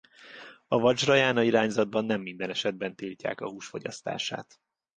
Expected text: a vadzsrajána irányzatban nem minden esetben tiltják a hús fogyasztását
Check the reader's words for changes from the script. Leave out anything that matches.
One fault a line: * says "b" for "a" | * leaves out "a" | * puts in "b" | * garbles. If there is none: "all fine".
all fine